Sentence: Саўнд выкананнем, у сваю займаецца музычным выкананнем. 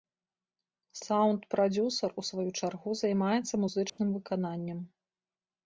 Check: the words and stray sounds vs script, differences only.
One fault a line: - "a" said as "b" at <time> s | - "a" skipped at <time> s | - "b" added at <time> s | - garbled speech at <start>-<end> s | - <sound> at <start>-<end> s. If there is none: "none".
- "выкананнем" said as "прадзюсар" at 1.5 s
- "чаргу" added at 2.6 s
- dropout at 3.9-4.0 s